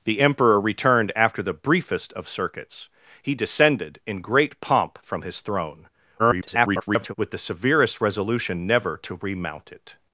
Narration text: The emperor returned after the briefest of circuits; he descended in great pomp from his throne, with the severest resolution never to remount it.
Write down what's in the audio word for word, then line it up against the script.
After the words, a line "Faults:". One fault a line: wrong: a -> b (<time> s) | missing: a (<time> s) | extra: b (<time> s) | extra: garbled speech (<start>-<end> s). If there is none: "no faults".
The emperor returned after the briefest of circuits; he descended in great pomp from his throne, [garbled] with the severest resolution never to remount it.
Faults:
extra: garbled speech (6.2-7.1 s)